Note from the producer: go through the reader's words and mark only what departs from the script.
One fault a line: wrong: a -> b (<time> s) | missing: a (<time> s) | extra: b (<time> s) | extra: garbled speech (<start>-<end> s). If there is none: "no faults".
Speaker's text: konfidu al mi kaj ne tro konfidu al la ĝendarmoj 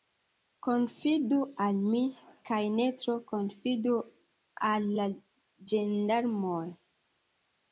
no faults